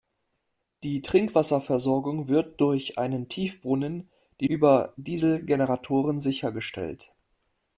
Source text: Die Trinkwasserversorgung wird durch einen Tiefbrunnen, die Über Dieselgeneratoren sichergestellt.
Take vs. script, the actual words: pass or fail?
pass